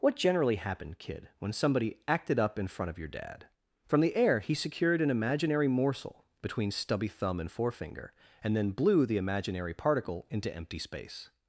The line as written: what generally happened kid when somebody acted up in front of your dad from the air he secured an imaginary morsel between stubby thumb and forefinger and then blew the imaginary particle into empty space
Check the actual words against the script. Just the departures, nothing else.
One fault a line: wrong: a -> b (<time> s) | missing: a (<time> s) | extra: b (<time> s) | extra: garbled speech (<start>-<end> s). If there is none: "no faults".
no faults